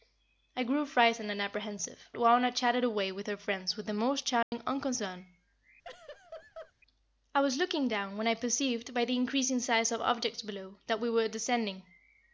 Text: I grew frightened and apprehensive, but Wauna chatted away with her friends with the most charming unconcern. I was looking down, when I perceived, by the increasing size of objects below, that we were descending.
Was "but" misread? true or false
true